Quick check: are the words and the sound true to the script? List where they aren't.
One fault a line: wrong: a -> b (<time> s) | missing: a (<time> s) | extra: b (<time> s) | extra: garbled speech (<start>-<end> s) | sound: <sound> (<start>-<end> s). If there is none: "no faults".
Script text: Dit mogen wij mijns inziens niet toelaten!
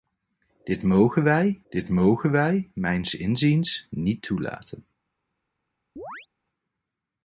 extra: dit mogen wij (1.7 s)
sound: chirp (6.0-6.3 s)